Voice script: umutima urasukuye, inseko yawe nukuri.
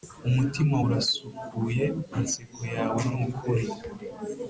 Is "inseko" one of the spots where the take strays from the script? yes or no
no